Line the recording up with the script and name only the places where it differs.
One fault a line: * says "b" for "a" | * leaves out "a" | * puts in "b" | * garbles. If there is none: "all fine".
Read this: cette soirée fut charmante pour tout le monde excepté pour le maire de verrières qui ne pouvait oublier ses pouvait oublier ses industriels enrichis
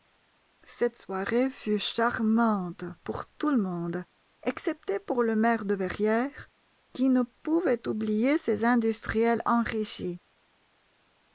* leaves out "pouvait oublier ses"